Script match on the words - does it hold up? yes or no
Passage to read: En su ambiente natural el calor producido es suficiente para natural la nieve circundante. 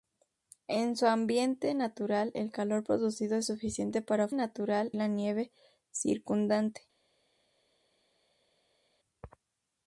yes